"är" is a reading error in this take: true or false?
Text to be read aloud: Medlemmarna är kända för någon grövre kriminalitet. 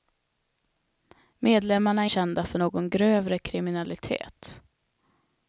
false